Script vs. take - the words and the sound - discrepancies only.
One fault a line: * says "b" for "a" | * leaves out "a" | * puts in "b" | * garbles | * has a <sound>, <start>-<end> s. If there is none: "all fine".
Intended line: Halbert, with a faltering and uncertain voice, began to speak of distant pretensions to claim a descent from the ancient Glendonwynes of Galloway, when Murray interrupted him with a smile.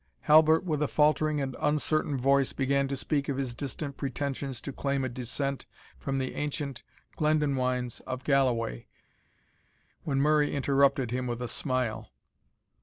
* puts in "his"